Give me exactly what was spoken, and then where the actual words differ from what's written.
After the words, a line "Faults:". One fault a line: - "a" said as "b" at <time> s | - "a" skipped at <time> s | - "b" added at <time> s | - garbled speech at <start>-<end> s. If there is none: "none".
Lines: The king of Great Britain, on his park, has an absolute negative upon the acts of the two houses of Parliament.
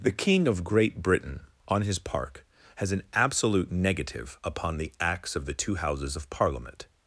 The king of Great Britain, on his park, has an absolute negative upon the acts of the two houses of Parliament.
Faults:
none